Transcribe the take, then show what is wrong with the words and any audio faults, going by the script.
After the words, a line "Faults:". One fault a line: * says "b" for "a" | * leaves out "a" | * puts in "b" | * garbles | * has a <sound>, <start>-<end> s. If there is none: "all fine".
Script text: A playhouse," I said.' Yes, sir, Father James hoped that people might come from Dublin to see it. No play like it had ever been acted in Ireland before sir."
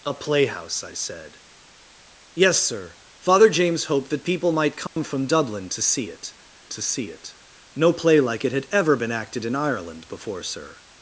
A playhouse," I said.' Yes, sir, Father James hoped that people might come from Dublin to see it to see it. No play like it had ever been acted in Ireland before sir."
Faults:
* has a dropout, 4.9-5.0 s
* puts in "to see it"